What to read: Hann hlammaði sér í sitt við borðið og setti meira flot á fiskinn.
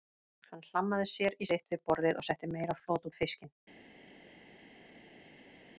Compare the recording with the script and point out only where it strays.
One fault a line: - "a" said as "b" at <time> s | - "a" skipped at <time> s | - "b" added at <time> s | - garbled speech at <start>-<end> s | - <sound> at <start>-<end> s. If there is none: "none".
none